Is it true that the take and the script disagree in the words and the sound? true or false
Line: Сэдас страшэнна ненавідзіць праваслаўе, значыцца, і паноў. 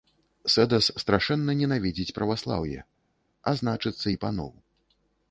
true